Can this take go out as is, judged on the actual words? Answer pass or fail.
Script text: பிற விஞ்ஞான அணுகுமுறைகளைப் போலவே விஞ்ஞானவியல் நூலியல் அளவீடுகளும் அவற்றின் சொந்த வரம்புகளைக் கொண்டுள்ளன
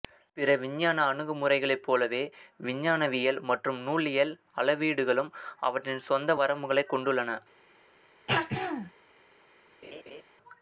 fail